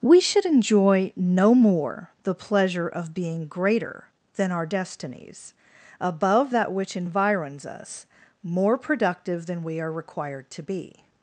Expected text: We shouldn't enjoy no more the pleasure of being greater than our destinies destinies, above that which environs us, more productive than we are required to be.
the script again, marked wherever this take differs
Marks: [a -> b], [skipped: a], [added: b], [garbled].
We [shouldn't -> should] enjoy no more the pleasure of being greater than our destinies [skipped: destinies,] above that which environs us, more productive than we are required to be.